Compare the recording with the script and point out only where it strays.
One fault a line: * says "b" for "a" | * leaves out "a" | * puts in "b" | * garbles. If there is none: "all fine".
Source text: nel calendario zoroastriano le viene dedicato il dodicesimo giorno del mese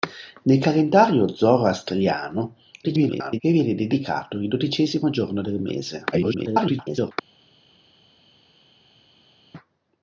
* garbles
* garbles